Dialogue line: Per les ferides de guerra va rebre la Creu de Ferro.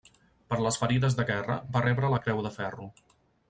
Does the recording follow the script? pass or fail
pass